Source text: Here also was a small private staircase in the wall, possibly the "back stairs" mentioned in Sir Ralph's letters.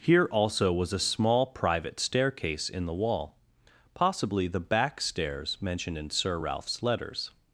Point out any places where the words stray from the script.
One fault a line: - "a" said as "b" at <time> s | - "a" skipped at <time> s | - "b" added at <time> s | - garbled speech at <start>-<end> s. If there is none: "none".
none